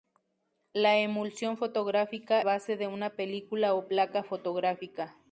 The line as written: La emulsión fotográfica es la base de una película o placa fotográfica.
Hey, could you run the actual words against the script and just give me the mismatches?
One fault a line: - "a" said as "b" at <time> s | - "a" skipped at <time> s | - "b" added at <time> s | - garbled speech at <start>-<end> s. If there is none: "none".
- "es la" skipped at 2.4 s